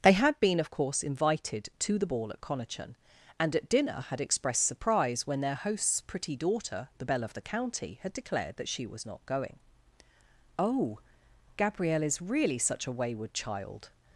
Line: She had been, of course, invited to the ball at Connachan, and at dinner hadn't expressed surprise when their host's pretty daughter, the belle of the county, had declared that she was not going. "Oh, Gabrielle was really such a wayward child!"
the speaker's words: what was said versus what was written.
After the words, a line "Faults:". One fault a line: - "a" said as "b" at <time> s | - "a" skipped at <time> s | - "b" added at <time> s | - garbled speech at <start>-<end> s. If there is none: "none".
They had been, of course, invited to the ball at Connachan, and at dinner had expressed surprise when their host's pretty daughter, the belle of the county, had declared that she was not going. "Oh, Gabrielle is really such a wayward child!"
Faults:
- "She" said as "They" at 0.0 s
- "hadn't" said as "had" at 4.1 s
- "was" said as "is" at 12.0 s